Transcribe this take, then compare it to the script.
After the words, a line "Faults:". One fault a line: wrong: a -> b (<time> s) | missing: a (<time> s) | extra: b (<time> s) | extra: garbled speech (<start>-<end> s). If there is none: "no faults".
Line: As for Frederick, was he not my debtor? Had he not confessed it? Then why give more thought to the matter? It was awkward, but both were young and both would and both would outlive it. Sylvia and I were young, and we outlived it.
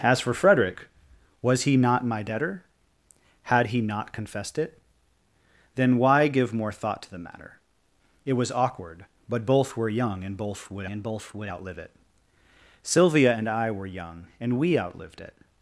As for Frederick, was he not my debtor? Had he not confessed it? Then why give more thought to the matter? It was awkward, but both were young and both would and both would outlive it. Sylvia and I were young, and we outlived it.
Faults:
no faults